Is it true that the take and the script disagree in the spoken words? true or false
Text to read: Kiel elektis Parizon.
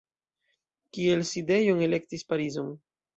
true